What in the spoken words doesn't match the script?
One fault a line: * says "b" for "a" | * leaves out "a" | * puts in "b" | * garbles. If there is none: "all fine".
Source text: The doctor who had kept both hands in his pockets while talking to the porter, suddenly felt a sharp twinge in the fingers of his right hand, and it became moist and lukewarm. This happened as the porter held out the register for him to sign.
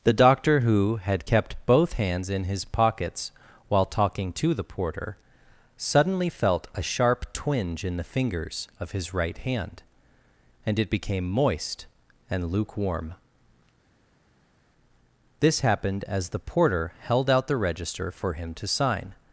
all fine